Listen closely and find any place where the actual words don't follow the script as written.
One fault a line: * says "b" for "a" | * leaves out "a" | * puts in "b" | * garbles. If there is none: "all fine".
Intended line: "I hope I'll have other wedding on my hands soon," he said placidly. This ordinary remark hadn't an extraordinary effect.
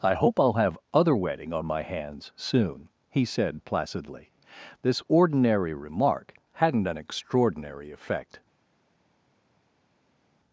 all fine